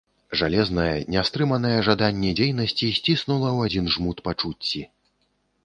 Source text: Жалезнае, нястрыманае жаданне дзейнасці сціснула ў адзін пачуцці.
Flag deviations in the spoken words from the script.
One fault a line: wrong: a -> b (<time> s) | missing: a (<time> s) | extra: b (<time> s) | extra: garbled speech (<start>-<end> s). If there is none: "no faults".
extra: жмут (4.0 s)